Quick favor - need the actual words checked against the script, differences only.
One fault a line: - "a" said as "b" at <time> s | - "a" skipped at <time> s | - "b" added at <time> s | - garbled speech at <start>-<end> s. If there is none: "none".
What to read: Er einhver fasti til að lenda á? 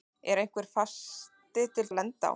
none